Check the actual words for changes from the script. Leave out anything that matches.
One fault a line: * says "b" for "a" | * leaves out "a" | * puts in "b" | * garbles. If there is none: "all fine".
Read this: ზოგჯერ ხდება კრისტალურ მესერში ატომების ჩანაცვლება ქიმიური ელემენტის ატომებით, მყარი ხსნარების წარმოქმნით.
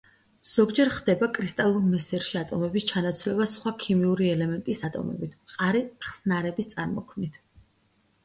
* puts in "სხვა"